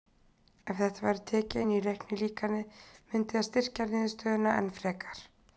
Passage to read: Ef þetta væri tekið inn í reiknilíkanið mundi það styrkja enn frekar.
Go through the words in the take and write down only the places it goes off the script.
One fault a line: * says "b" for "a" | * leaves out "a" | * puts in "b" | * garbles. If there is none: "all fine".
* puts in "niðurstöðuna"